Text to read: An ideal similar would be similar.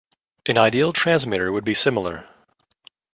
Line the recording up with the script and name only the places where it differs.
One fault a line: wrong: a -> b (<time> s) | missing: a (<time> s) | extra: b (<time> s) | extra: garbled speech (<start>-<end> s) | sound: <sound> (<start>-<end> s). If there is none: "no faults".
wrong: similar -> transmitter (0.9 s)